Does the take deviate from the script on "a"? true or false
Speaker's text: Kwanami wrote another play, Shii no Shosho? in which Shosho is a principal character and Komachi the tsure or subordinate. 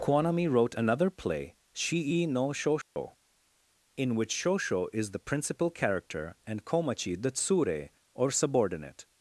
true